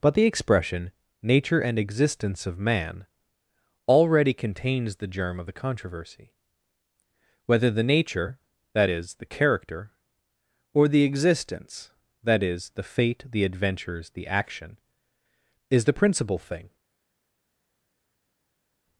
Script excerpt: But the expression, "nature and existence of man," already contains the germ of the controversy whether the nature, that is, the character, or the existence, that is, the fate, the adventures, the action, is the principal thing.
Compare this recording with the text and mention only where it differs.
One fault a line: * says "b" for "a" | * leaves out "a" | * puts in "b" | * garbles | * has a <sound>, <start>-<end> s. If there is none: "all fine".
all fine